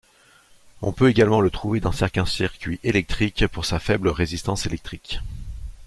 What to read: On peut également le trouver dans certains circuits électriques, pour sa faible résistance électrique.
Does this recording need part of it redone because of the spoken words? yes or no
no